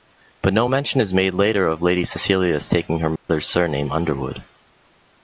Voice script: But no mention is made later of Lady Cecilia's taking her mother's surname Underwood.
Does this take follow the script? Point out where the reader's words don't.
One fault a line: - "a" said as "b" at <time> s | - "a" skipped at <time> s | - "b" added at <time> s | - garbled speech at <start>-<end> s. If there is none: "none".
none